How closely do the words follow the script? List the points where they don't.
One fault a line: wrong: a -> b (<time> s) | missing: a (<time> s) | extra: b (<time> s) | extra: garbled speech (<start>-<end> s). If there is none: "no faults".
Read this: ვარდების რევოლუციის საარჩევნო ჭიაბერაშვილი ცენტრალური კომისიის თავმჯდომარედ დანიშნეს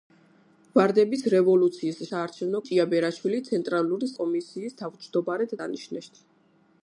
no faults